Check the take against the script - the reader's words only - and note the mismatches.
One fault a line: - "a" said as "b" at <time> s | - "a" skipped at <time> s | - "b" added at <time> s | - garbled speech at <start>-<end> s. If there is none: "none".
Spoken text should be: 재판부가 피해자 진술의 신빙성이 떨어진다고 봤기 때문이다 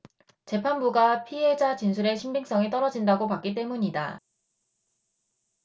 none